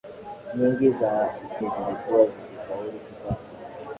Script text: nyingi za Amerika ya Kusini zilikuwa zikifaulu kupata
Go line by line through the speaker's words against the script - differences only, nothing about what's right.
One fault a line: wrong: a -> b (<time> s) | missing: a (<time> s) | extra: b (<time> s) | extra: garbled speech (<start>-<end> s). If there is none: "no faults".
missing: Amerika ya Kusini (1.4 s)